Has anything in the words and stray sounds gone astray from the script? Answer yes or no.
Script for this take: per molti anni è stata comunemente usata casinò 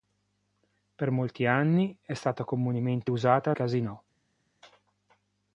no